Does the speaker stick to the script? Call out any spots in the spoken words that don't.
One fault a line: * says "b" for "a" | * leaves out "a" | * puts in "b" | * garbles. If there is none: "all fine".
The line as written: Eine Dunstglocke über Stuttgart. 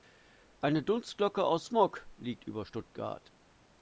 * puts in "aus Smog liegt"